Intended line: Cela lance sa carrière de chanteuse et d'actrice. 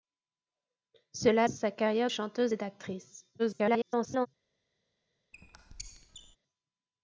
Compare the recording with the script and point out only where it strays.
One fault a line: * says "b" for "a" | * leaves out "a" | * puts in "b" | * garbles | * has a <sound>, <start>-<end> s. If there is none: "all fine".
* leaves out "lance"
* leaves out "de"
* garbles
* has a squeak, 5.3-6.4 s